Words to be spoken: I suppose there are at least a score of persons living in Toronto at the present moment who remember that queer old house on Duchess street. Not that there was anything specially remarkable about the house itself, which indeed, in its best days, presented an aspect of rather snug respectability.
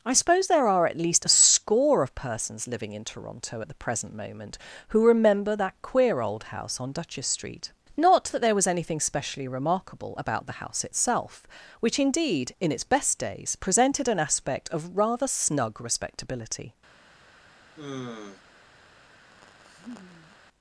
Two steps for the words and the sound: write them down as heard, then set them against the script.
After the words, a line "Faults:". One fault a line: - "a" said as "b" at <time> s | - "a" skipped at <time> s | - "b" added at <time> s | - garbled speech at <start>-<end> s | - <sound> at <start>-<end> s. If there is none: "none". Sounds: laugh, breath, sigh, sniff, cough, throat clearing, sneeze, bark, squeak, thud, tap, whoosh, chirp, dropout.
I suppose there are at least a score of persons living in Toronto at the present moment who remember that queer old house on Duchess street. Not that there was anything specially remarkable about the house itself, which indeed, in its best days, presented an aspect of rather snug respectability.
Faults:
- sigh at 17.8-18.4 s
- laugh at 19.3-20.4 s